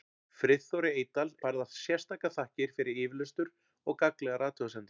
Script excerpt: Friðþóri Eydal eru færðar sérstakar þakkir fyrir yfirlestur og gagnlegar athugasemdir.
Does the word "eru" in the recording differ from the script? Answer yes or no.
yes